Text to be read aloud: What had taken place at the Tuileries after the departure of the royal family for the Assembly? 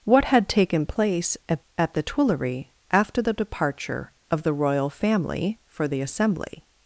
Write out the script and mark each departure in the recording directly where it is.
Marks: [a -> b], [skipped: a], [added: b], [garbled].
What had taken place at [added: at] the Tuileries after the departure of the royal family for the Assembly?